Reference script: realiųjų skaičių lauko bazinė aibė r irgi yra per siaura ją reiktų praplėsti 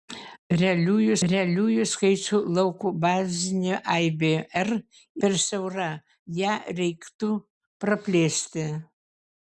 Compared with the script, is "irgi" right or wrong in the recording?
wrong